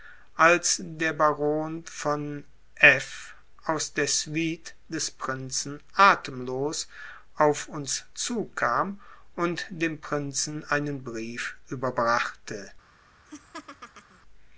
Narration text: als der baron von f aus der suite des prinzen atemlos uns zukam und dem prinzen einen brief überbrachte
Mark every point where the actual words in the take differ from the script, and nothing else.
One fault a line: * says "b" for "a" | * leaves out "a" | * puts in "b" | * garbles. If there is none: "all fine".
* puts in "auf"